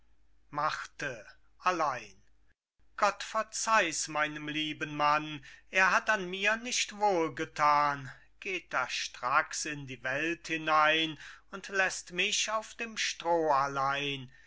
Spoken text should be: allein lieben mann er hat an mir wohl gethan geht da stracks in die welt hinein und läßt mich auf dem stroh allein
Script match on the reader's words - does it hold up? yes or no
no